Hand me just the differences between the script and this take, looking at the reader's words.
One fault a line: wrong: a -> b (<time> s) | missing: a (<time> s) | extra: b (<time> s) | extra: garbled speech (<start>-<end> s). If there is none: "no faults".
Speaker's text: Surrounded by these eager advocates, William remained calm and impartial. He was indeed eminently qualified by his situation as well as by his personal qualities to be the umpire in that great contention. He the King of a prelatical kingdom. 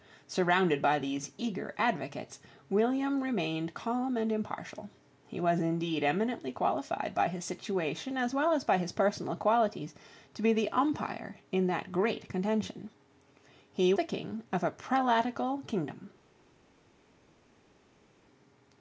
no faults